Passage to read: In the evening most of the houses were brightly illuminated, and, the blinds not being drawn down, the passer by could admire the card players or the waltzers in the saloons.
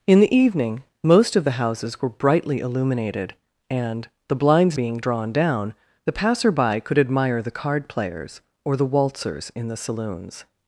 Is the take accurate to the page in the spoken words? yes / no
no